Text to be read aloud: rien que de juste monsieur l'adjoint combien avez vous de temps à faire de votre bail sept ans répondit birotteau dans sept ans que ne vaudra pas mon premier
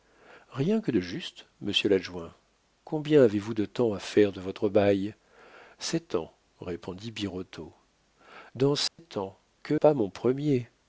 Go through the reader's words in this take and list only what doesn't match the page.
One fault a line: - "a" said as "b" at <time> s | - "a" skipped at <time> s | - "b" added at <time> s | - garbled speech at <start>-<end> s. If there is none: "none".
- "ne vaudra" skipped at 9.7 s